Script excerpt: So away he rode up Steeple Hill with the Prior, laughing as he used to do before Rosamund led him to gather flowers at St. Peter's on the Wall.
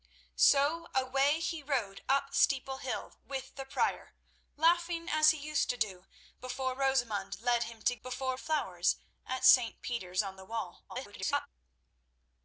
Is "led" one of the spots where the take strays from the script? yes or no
no